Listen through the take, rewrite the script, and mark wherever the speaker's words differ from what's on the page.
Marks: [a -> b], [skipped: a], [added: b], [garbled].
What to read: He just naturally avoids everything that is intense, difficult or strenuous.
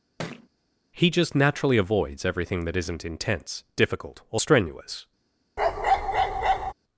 He just naturally avoids everything that [is -> isn't] intense, difficult or strenuous.